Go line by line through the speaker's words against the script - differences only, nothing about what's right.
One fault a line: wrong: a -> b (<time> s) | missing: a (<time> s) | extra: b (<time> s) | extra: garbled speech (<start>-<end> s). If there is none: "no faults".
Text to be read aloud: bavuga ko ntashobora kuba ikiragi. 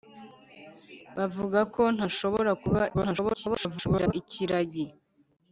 extra: garbled speech (2.9-4.1 s)